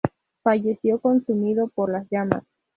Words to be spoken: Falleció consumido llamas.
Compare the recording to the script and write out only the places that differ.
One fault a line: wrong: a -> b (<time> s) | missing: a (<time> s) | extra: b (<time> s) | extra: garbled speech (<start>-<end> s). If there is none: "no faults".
extra: por las (1.7 s)